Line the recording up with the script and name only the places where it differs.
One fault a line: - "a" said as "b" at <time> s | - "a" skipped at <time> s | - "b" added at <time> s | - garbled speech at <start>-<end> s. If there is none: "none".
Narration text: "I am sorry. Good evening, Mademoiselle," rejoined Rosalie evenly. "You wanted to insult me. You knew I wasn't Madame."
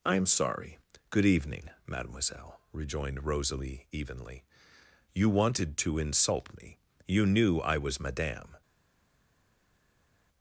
- "wasn't" said as "was" at 7.8 s